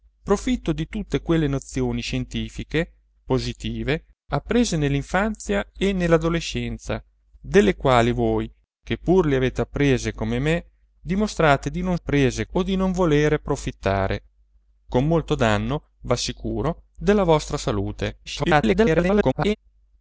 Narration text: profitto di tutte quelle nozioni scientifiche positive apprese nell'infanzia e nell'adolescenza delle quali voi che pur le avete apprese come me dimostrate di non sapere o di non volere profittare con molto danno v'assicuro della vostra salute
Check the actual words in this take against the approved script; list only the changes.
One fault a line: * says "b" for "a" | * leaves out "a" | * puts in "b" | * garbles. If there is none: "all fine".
* says "apprese" for "sapere"
* garbles